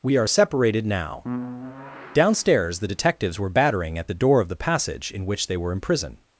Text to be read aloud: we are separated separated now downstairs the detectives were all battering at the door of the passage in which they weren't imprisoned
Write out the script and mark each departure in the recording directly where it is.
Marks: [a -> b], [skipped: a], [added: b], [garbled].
we are separated [skipped: separated] now downstairs the detectives were [skipped: all] battering at the door of the passage in which they [weren't -> were] imprisoned